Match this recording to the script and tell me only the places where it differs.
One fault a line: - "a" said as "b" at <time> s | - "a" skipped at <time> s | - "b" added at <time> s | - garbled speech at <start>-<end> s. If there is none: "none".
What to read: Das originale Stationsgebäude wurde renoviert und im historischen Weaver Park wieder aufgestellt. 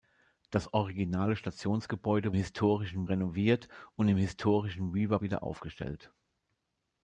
- "wurde" said as "historischen" at 2.3 s
- "Park" skipped at 5.2 s